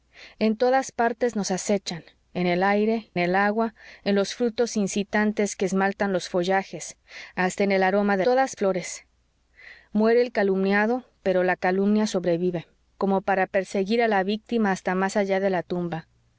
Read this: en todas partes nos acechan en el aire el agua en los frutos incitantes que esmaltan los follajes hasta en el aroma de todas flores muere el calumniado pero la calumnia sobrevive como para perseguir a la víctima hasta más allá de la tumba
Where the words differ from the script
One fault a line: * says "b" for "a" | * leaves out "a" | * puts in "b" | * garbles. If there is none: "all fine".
all fine